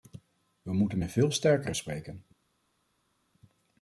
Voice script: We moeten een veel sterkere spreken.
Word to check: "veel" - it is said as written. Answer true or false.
true